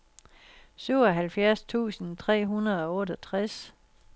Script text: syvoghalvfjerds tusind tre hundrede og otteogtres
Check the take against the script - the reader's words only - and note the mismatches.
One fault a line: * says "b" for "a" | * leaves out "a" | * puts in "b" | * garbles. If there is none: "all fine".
all fine